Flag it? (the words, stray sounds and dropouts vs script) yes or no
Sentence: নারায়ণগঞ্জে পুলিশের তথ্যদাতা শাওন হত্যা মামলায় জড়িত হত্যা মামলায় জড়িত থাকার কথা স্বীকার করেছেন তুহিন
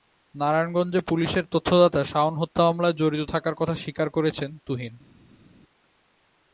yes